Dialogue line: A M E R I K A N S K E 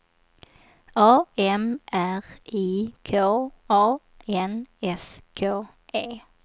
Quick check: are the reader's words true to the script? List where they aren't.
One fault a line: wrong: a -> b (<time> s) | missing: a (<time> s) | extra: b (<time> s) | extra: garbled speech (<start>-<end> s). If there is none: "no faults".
missing: E (1.8 s)